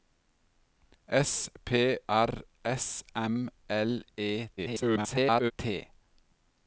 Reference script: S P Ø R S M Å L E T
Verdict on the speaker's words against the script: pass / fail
fail